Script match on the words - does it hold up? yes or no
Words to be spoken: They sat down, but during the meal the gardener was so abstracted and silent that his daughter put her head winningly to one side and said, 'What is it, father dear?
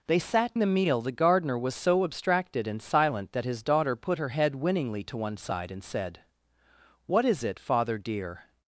no